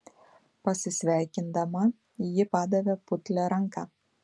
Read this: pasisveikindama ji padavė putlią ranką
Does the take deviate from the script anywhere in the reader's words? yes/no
no